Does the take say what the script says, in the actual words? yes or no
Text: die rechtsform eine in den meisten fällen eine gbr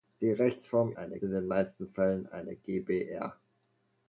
yes